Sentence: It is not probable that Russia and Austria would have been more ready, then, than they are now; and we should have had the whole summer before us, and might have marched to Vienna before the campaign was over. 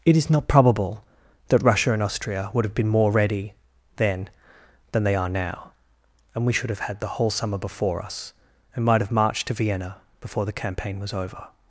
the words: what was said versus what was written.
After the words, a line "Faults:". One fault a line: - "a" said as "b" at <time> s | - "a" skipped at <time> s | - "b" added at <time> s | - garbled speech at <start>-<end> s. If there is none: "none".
It is not probable that Russia and Austria would have been more ready, then, than they are now; and we should have had the whole summer before us, and might have marched to Vienna before the campaign was over.
Faults:
none